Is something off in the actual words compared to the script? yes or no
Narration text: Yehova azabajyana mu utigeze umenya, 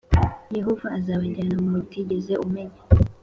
no